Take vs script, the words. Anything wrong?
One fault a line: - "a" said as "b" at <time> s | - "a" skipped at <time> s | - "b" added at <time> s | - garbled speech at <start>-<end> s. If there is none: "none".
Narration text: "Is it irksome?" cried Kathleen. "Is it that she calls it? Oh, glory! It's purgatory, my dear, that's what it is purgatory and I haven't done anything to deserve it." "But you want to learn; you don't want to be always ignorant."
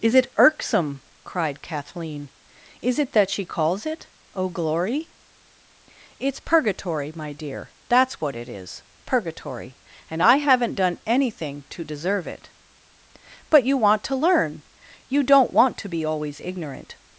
none